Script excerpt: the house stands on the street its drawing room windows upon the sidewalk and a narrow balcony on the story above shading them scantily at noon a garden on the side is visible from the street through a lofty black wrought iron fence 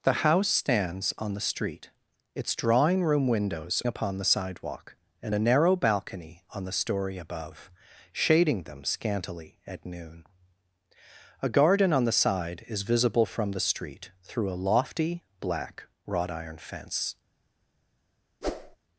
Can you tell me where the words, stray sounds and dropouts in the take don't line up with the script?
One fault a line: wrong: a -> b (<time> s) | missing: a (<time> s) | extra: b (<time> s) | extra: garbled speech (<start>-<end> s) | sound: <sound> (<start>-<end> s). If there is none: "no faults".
sound: whoosh (18.4-18.8 s)